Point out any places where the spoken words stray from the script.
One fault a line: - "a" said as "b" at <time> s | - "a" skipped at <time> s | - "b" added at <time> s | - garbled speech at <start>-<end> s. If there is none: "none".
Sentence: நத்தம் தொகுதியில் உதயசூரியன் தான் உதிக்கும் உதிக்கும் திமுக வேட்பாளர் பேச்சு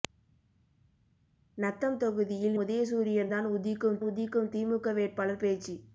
none